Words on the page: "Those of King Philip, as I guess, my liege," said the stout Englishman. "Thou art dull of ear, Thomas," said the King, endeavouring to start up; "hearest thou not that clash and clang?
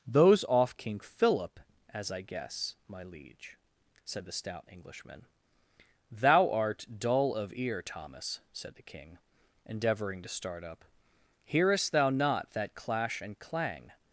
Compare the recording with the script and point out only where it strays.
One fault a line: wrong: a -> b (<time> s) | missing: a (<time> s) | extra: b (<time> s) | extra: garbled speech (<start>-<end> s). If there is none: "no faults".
wrong: of -> off (0.5 s)